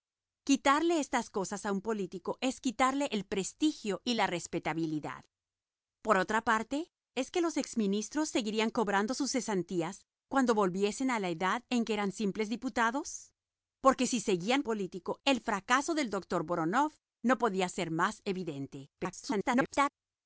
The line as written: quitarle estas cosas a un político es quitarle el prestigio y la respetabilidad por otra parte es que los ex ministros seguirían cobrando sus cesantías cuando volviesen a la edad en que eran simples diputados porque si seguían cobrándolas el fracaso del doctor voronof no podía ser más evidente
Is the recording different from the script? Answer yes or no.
yes